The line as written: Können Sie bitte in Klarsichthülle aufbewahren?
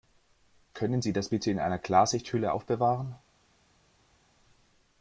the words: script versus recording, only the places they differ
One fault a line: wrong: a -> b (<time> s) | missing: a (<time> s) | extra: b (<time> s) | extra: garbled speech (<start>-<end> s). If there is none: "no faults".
extra: das (1.1 s)
extra: einer (1.6 s)